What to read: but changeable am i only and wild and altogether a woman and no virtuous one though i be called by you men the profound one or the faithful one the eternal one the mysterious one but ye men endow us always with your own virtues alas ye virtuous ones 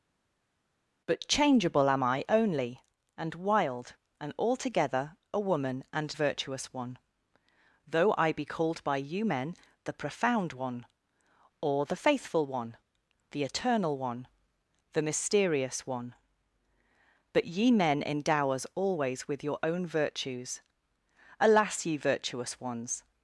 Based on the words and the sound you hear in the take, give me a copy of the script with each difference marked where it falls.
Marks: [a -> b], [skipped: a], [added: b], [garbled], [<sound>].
but changeable am i only and wild and altogether a woman and [skipped: no] virtuous one though i be called by you men the profound one or the faithful one the eternal one the mysterious one but ye men endow us always with your own virtues alas ye virtuous ones